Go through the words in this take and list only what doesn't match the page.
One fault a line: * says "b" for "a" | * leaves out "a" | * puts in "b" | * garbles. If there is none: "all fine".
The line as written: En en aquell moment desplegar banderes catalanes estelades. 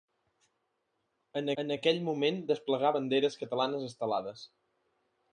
all fine